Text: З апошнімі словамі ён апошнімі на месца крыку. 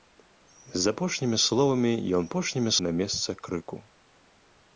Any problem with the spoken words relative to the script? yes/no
no